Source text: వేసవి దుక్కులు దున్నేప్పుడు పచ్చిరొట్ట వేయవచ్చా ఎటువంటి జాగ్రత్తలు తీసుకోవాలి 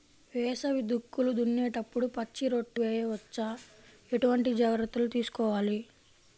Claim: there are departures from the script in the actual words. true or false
false